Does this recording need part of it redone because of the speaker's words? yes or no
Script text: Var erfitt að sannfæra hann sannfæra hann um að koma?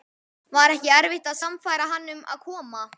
yes